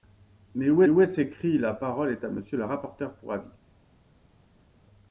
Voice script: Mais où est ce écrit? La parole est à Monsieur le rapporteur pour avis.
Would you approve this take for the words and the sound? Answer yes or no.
no